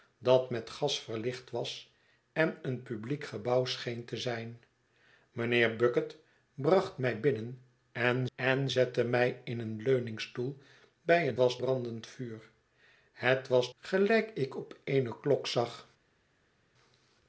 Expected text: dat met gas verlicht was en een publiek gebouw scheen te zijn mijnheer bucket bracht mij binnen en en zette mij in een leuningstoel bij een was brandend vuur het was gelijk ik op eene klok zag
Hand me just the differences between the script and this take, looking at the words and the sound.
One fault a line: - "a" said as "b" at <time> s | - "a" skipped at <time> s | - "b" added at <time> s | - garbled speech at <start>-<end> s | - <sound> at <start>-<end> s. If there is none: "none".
none